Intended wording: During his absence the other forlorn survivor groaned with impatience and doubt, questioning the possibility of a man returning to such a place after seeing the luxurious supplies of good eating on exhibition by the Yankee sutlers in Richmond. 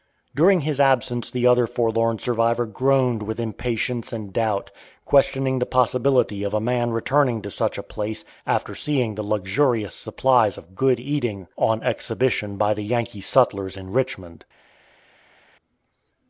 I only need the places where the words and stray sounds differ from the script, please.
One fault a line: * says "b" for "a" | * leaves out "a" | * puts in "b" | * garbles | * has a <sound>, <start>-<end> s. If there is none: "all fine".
all fine